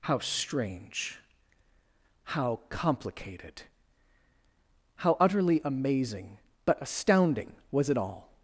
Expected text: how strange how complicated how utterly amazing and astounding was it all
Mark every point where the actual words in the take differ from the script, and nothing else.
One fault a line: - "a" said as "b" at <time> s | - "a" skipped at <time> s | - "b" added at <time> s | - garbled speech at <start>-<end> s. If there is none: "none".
- "and" said as "but" at 6.6 s